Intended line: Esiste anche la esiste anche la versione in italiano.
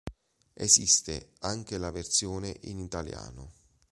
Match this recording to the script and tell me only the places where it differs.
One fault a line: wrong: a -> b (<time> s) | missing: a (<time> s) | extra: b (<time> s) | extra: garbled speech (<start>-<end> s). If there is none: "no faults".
missing: esiste anche la (1.9 s)